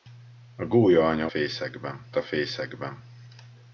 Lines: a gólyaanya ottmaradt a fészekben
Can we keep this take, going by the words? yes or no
no